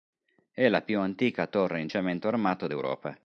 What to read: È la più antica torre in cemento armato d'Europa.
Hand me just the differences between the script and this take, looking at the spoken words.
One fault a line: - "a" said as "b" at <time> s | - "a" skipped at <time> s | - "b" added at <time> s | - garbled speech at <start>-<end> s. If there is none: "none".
none